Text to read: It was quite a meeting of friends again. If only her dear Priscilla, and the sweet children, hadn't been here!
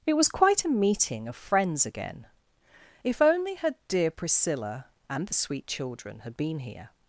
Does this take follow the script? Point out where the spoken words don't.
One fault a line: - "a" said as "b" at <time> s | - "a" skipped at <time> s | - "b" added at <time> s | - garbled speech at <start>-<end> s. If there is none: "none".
- "hadn't" said as "had" at 6.2 s